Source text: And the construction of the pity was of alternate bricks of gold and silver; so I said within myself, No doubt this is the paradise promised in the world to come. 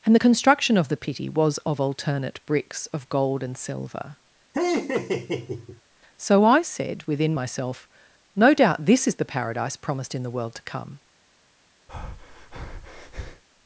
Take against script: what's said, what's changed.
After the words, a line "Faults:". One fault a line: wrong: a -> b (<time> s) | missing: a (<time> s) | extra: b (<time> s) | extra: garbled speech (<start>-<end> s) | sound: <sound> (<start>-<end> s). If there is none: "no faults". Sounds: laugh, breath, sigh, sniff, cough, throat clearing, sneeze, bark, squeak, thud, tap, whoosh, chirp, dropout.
And the construction of the pity was of alternate bricks of gold and silver; so I said within myself, No doubt this is the paradise promised in the world to come.
Faults:
sound: laugh (4.5-5.8 s)
sound: breath (11.9-13.4 s)